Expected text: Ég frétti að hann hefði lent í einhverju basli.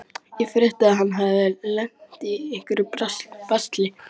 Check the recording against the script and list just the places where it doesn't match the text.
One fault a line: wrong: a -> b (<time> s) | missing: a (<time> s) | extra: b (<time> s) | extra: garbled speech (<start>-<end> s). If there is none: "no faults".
no faults